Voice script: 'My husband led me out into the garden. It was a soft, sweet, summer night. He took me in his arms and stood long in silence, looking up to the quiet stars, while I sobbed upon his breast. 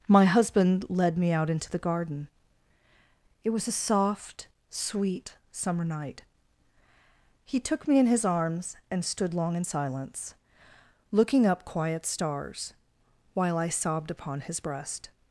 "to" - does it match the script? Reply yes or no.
no